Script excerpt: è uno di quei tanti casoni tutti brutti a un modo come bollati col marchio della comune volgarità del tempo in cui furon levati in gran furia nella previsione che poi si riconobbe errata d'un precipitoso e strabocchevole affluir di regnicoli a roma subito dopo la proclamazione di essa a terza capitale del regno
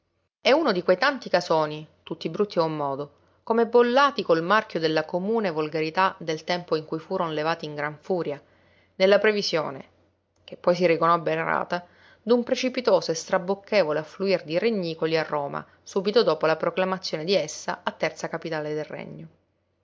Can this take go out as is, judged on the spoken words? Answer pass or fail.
pass